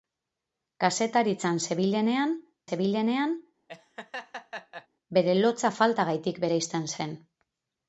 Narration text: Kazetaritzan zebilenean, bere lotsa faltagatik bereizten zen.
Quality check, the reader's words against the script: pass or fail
fail